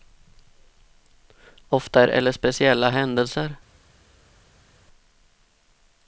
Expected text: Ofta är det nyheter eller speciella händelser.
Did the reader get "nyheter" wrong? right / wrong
wrong